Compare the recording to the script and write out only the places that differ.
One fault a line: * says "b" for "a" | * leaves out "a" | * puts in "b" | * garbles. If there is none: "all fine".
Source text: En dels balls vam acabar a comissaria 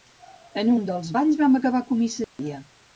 * puts in "un"